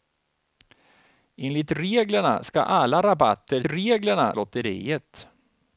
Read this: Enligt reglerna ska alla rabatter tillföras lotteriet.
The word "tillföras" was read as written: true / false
false